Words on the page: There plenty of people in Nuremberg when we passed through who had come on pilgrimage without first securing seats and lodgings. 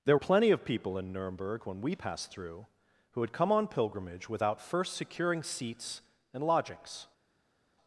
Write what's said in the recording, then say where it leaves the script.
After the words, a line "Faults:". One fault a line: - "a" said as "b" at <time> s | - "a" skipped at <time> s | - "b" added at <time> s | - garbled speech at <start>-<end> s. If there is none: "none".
There plenty of people in Nuremberg when we passed through who had come on pilgrimage without first securing seats and lodgings.
Faults:
none